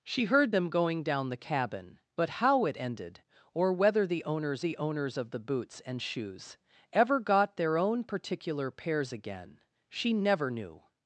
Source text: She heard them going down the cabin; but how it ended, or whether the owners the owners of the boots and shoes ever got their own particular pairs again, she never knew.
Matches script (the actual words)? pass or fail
pass